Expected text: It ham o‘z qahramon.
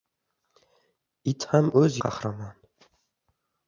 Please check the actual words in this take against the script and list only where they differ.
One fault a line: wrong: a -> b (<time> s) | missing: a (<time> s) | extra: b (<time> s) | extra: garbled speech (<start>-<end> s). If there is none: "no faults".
no faults